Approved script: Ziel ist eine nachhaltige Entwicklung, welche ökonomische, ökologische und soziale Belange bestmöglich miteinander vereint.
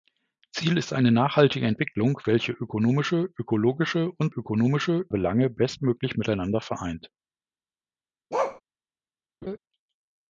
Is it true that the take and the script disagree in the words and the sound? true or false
true